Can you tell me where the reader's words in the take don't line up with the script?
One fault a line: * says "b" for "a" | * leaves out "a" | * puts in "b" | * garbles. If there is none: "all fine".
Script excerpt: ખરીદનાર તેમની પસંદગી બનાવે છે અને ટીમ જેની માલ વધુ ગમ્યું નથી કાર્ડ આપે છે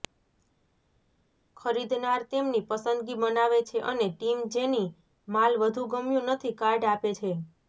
all fine